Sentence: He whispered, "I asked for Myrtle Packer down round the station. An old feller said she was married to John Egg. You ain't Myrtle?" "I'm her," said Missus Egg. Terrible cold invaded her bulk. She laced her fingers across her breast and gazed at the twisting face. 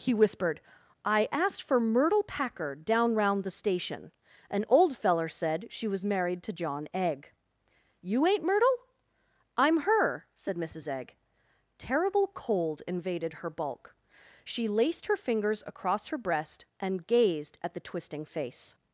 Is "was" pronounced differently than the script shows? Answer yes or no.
no